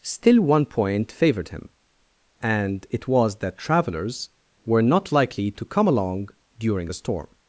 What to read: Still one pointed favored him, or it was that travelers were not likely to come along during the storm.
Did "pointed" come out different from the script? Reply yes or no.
yes